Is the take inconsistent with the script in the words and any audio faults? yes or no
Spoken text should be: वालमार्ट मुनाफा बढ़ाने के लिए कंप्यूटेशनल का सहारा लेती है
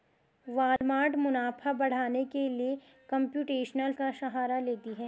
yes